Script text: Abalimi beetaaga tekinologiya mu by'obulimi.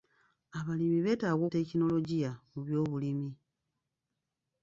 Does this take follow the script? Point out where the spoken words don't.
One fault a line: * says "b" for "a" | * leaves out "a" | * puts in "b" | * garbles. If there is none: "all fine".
all fine